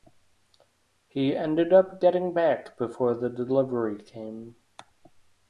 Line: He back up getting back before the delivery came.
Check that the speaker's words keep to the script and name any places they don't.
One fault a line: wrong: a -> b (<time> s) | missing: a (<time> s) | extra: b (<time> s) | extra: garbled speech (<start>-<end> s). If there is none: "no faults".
wrong: back -> ended (1.4 s)